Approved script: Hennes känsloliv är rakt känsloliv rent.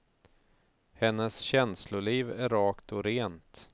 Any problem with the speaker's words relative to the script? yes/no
yes